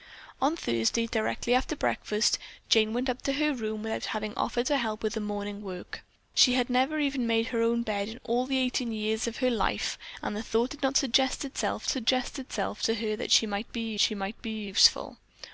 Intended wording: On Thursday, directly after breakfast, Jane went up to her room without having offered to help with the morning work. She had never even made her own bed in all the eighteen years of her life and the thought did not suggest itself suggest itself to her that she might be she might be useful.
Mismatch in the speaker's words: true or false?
false